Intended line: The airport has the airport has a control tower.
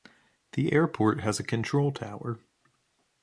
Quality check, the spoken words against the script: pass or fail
fail